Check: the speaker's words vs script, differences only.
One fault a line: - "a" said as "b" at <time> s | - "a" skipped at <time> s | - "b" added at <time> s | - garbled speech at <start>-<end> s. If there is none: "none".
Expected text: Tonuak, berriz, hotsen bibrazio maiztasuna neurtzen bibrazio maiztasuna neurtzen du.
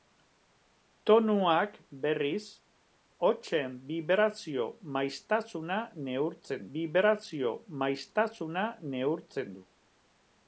none